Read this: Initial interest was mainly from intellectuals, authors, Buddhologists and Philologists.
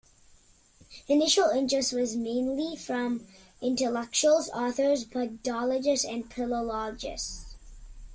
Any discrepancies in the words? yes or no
no